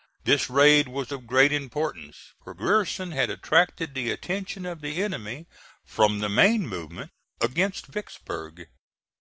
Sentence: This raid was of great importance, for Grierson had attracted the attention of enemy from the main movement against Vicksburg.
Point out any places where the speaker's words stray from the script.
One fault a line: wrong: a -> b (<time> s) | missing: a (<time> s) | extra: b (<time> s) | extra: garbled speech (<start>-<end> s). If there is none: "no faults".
extra: the (4.8 s)